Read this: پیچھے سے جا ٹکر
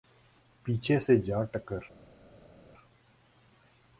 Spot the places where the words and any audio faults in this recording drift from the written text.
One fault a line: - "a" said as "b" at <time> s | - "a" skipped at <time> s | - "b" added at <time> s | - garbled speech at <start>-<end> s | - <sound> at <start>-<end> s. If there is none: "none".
none